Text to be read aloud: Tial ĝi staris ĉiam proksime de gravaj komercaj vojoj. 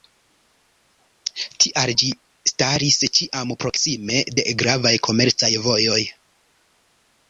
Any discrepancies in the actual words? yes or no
no